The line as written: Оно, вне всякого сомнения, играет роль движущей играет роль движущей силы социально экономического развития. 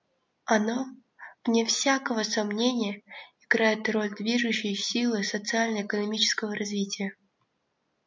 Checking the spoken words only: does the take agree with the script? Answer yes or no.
no